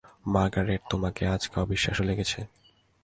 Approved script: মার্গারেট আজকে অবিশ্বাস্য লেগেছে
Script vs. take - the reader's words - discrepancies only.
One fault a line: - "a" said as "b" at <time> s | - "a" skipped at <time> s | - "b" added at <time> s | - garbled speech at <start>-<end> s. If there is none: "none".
- "তোমাকে" added at 0.9 s